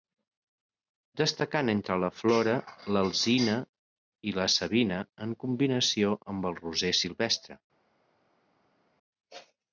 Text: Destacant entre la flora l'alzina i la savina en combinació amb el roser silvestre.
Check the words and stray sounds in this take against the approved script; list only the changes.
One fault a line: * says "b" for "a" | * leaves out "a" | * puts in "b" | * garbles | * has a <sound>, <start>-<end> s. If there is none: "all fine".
all fine